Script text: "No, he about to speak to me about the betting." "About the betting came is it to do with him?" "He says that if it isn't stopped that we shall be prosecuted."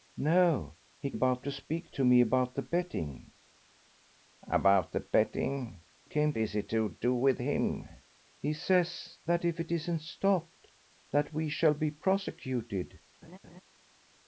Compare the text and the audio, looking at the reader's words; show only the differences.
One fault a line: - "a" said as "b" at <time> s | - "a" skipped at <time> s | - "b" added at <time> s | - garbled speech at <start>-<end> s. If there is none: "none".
none